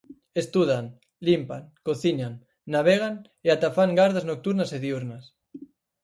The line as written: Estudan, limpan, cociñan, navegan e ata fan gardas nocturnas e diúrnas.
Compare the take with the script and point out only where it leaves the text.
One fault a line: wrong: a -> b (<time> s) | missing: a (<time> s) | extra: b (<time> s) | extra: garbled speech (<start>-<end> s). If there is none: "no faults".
no faults